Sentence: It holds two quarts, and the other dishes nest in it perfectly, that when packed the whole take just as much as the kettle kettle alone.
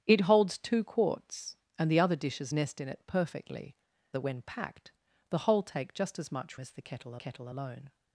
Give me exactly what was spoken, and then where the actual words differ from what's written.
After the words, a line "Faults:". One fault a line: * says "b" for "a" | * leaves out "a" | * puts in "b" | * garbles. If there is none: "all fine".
It holds two quarts, and the other dishes nest in it perfectly, that when packed the whole take just as much as the kettle kettle alone.
Faults:
all fine